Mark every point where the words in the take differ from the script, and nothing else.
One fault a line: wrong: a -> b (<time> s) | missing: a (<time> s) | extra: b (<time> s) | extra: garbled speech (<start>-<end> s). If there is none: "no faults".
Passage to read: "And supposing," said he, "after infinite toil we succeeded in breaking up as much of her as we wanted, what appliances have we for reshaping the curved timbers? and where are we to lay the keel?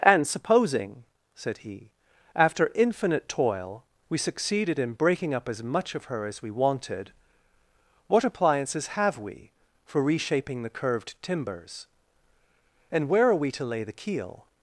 no faults